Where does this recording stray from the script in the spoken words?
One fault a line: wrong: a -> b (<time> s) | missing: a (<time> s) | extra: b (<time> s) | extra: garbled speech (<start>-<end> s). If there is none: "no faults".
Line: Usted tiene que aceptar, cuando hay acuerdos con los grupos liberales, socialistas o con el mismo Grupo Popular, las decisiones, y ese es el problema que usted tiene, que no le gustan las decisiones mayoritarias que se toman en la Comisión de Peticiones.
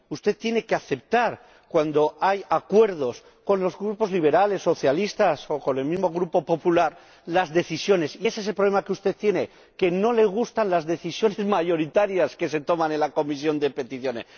no faults